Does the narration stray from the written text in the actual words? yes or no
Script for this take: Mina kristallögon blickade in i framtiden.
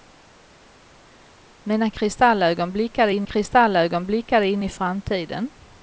yes